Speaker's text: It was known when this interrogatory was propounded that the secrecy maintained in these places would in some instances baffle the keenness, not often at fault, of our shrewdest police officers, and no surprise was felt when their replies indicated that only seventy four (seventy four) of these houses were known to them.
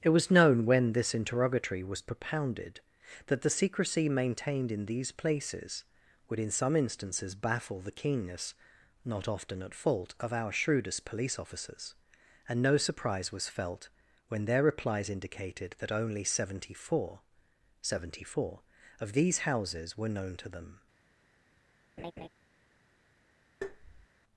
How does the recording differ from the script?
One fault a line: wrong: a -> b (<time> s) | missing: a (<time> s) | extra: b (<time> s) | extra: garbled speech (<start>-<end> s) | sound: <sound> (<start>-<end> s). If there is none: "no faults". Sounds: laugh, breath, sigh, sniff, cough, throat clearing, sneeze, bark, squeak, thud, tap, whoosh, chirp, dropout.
sound: laugh (22.0-22.3 s)
sound: tap (23.6-24.1 s)